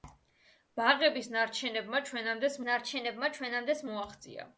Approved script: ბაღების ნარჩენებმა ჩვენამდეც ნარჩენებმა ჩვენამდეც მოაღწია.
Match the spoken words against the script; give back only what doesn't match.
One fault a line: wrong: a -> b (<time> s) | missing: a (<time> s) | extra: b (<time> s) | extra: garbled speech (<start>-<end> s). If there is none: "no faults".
no faults